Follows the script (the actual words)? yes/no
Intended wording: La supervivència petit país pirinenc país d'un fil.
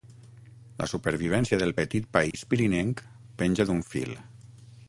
no